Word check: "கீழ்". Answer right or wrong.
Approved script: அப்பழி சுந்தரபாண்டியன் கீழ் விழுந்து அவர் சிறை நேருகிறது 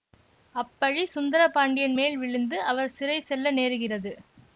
wrong